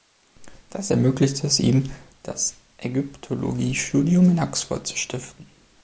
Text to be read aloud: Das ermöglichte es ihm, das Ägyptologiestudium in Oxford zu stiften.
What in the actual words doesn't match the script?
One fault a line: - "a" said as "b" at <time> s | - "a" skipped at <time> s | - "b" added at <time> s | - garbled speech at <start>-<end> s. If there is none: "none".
none